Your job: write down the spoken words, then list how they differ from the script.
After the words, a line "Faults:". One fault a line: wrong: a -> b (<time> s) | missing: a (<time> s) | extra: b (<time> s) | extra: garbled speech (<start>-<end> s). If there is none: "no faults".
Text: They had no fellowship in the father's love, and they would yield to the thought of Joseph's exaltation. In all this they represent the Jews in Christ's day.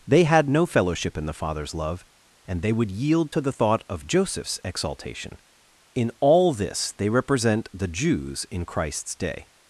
They had no fellowship in the father's love, and they would yield to the thought of Joseph's exaltation. In all this they represent the Jews in Christ's day.
Faults:
no faults